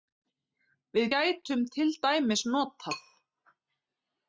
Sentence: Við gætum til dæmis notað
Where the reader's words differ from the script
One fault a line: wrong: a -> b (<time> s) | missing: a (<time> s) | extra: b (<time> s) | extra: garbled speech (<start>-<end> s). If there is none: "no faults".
no faults